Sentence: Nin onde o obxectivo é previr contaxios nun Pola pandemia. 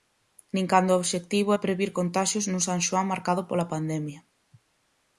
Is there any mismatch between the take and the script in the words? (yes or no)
yes